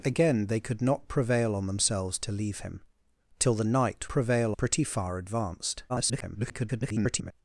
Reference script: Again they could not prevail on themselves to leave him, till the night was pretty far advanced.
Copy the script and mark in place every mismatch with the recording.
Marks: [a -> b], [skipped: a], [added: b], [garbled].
Again they could not prevail on themselves to leave him, till the night [was -> prevail] pretty far advanced. [garbled]